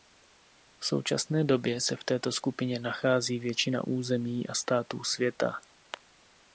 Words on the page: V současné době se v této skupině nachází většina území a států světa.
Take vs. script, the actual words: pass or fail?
pass